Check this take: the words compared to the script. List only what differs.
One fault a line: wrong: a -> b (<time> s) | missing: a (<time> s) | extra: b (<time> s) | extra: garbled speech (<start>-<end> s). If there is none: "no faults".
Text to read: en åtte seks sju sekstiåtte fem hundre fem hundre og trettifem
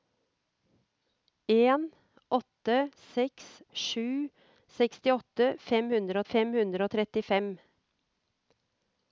no faults